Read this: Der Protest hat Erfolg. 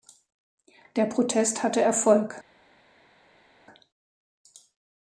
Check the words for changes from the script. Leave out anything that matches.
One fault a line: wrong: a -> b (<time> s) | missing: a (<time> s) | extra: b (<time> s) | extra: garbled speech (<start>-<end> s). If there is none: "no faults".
wrong: hat -> hatte (1.6 s)